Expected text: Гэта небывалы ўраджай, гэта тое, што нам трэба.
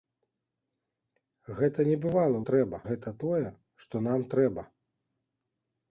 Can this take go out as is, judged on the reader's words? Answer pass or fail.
fail